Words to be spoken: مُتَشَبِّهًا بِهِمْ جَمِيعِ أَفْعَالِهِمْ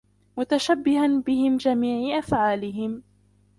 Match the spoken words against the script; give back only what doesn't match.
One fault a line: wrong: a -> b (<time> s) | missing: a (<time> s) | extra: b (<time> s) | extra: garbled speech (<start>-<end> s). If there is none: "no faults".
no faults